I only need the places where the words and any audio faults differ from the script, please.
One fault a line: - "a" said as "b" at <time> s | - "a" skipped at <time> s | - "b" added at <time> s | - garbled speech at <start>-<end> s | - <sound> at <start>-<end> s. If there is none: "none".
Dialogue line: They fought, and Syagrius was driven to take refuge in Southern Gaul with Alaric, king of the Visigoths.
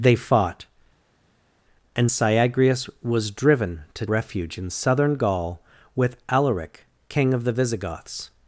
- "take" skipped at 4.1 s